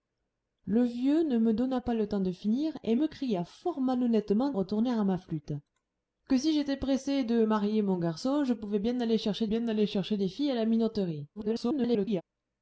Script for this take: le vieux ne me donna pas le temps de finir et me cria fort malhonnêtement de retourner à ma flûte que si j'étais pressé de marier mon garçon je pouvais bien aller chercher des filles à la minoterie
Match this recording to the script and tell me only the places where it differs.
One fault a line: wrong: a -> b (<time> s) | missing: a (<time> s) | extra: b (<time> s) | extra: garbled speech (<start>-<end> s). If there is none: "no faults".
missing: de (4.5 s)
extra: bien aller chercher (9.5 s)
extra: garbled speech (11.4-12.2 s)